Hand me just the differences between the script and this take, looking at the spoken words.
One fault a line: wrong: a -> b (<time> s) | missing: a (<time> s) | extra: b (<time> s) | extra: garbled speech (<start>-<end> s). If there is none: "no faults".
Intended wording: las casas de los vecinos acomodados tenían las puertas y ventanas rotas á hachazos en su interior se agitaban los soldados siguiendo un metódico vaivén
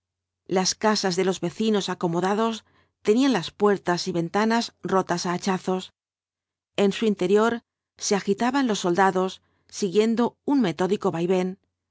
no faults